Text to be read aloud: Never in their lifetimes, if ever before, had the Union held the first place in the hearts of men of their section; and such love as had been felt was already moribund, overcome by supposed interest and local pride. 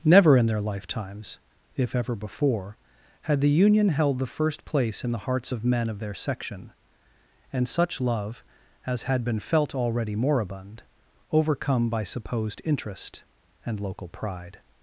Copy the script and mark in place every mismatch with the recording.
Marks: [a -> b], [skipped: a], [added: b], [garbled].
Never in their lifetimes, if ever before, had the Union held the first place in the hearts of men of their section; and such love as had been felt [skipped: was] already moribund, overcome by supposed interest and local pride.